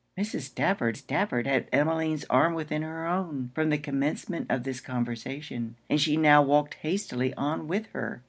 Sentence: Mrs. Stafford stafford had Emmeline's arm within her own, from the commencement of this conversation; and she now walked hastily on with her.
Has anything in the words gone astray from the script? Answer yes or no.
no